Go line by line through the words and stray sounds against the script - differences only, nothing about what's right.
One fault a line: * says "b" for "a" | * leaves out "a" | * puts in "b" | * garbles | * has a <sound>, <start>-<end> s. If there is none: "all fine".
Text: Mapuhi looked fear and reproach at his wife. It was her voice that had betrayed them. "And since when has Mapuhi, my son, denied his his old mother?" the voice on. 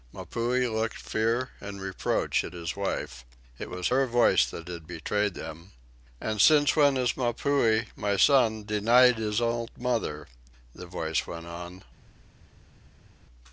* leaves out "his"
* puts in "went"